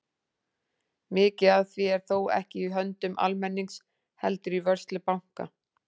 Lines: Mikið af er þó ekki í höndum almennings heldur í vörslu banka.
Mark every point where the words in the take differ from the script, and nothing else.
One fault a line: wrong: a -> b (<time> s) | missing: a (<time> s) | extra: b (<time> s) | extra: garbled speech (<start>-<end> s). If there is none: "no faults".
extra: því (1.8 s)